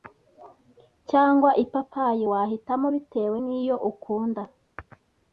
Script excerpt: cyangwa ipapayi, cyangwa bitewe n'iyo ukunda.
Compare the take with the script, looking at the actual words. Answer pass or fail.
fail